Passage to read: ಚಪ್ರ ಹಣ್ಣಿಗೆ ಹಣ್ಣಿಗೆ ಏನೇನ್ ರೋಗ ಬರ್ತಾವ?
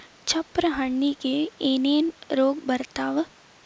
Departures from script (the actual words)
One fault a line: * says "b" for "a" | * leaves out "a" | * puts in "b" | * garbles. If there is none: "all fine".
* leaves out "ಹಣ್ಣಿಗೆ"